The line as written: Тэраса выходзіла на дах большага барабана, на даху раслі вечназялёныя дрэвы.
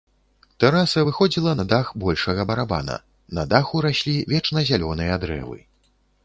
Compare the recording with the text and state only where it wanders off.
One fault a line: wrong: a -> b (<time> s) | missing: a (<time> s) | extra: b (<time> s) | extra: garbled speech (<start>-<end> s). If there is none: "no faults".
no faults